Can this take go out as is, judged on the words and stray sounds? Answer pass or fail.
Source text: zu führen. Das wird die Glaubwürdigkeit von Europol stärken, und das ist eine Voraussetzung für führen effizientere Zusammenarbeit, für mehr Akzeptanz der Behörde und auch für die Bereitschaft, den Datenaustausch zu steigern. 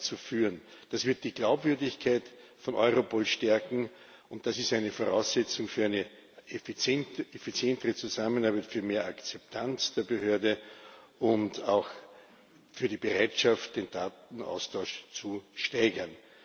fail